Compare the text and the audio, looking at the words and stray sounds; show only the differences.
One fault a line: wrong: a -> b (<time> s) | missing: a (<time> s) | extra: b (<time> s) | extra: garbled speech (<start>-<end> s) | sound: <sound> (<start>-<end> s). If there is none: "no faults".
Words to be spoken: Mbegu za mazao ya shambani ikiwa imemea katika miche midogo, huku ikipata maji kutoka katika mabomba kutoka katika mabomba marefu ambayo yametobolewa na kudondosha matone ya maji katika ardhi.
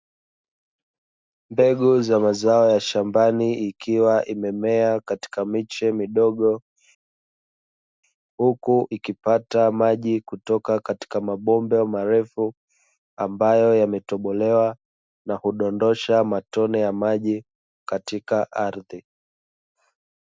missing: kutoka katika mabomba (11.8 s)